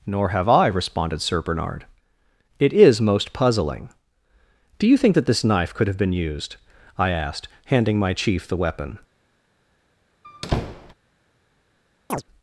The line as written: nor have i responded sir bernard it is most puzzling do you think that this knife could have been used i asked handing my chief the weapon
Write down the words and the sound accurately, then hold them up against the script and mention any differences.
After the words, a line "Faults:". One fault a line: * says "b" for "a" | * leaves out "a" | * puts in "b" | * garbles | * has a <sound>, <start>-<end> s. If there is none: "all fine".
nor have i responded sir bernard it is most puzzling do you think that this knife could have been used i asked handing my chief the weapon
Faults:
* has a squeak, 10.2-10.9 s
* has a chirp, 12.1-12.2 s